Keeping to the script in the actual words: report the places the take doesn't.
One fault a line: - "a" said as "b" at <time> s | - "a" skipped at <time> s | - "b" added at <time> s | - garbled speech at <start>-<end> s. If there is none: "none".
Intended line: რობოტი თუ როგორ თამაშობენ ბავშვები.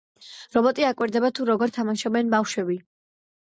- "აკვირდება" added at 0.9 s